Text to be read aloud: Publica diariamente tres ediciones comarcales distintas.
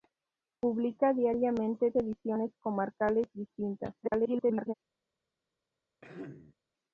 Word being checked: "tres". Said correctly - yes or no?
no